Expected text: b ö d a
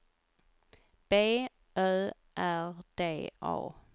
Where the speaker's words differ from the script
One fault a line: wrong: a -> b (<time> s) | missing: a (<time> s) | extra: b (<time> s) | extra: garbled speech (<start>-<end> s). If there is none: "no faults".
extra: r (2.4 s)